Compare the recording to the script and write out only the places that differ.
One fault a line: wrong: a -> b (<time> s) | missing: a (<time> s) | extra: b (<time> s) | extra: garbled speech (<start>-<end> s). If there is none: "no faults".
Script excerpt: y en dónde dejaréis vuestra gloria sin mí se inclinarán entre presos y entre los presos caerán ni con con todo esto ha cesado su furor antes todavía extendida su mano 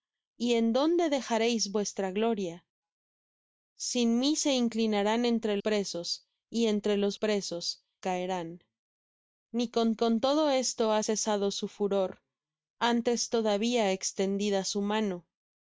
no faults